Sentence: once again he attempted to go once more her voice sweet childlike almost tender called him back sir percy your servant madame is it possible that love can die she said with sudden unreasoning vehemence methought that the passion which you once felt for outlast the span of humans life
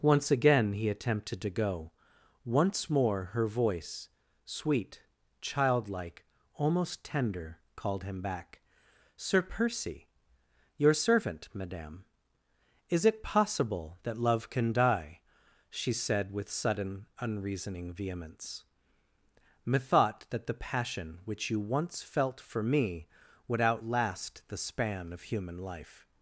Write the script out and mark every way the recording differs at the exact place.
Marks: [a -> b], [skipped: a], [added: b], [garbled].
once again he attempted to go once more her voice sweet childlike almost tender called him back sir percy your servant madame is it possible that love can die she said with sudden unreasoning vehemence methought that the passion which you once felt for [added: me would] outlast the span of [humans -> human] life